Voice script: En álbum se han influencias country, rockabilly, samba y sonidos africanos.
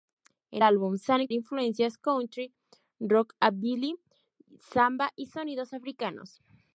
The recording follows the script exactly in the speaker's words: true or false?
true